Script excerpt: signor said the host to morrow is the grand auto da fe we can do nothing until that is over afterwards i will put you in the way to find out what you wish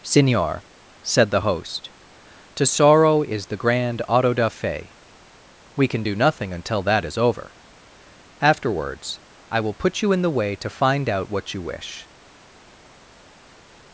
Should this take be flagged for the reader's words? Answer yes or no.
yes